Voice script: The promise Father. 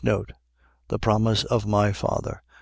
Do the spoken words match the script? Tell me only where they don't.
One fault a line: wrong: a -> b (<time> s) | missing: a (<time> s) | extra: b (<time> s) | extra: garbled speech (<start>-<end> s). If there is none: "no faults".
extra: of my (1.4 s)